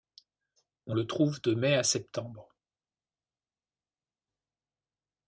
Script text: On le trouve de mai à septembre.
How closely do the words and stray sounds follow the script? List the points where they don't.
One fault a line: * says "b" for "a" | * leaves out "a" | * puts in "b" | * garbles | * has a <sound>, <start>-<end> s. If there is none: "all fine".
all fine